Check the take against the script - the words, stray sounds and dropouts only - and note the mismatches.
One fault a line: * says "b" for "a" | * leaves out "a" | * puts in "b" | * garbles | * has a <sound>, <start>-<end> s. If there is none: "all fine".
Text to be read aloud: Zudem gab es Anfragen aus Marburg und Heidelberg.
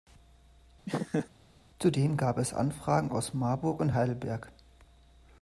* has a laugh, 0.9-1.3 s